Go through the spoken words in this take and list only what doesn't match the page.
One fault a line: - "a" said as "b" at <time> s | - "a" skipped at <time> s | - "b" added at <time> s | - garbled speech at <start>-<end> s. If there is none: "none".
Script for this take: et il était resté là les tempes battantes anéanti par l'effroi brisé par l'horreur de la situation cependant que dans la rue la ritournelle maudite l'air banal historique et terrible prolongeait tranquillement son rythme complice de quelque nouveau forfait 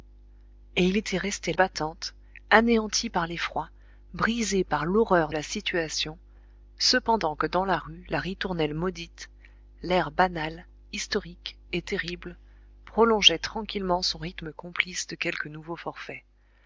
- "là les tempes" skipped at 1.5 s
- "de" skipped at 5.3 s